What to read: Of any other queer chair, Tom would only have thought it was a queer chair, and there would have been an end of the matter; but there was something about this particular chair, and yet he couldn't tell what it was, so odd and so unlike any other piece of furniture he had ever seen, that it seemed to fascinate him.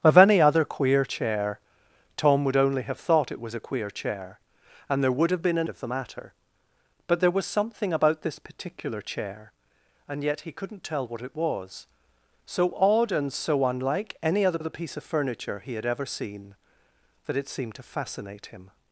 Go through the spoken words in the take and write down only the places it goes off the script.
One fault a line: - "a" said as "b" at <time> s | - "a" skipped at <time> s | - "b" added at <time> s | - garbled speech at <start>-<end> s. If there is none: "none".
- "end" skipped at 5.7 s
- "other" added at 14.6 s